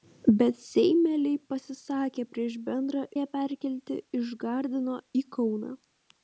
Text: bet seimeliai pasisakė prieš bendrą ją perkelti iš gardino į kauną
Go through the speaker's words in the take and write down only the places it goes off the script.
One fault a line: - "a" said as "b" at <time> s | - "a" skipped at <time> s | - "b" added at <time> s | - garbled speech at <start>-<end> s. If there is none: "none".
none